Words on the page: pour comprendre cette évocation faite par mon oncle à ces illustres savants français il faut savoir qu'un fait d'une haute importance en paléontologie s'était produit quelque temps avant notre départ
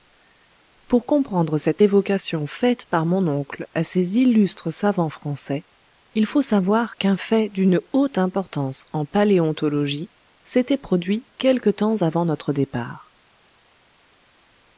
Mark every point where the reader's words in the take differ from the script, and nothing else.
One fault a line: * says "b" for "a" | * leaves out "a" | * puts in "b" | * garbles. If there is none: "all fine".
all fine